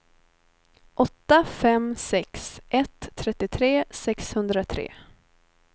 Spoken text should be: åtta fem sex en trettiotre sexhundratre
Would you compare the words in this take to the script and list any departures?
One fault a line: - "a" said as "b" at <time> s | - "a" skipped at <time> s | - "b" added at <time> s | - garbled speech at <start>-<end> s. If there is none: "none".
- "en" said as "ett" at 2.7 s